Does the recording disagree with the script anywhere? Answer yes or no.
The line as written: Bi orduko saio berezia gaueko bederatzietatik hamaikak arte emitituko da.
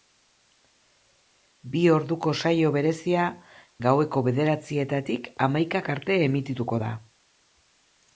no